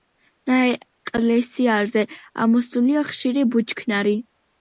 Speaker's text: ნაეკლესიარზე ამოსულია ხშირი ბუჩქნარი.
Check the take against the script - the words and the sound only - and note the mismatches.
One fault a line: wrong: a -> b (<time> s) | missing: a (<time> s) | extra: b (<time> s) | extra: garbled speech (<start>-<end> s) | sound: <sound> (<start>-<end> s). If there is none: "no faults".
no faults